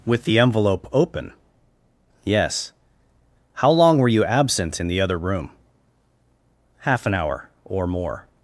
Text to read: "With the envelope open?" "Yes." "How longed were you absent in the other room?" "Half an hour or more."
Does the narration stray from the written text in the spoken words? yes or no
yes